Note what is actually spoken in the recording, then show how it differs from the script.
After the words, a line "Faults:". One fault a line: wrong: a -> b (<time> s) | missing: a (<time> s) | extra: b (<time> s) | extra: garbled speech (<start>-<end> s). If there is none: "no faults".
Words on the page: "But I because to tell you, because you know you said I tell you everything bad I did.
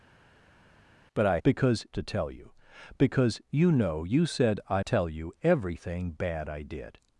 "But I because to tell you, because you know you said I tell you everything bad I did.
Faults:
no faults